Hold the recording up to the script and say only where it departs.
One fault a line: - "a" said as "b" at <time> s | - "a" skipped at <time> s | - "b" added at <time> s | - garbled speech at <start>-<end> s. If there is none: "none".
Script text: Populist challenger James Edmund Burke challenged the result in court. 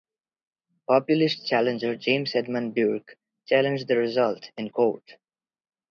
none